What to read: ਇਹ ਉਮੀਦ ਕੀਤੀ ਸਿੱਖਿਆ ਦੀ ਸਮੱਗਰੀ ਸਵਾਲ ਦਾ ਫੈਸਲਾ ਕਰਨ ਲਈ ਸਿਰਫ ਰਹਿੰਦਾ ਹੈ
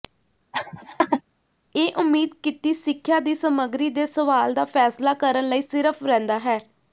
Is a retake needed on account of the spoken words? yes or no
yes